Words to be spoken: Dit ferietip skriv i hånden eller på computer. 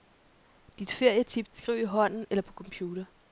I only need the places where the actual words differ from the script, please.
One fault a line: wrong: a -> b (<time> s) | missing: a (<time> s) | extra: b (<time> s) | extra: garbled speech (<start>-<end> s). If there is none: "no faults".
no faults